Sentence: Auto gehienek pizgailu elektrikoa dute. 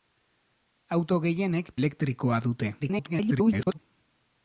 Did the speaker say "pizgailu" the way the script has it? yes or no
no